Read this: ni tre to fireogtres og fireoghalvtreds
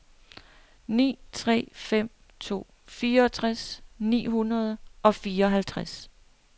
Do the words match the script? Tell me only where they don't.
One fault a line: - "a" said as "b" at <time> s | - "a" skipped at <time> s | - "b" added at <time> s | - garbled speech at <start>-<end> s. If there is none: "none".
- "fem" added at 1.7 s
- "ni hundrede" added at 4.0 s